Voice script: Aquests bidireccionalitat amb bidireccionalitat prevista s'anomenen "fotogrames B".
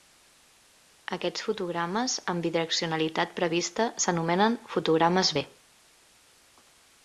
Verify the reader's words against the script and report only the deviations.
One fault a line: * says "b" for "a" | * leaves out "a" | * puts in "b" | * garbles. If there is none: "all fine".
* says "fotogrames" for "bidireccionalitat"